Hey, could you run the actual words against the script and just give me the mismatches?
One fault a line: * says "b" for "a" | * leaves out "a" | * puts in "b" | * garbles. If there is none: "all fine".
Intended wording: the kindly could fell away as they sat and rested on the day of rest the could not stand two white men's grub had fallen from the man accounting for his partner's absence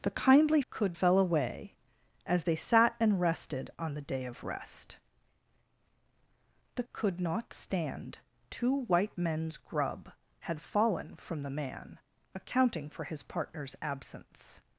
all fine